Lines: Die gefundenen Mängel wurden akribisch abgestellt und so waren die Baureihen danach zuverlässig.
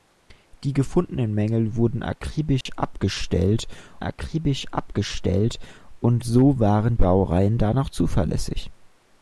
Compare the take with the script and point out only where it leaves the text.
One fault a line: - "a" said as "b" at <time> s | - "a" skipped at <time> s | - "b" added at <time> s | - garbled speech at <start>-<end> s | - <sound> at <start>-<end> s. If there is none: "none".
- dropout at 2.6-2.7 s
- "akribisch abgestellt" added at 4.0 s
- "die" skipped at 6.9 s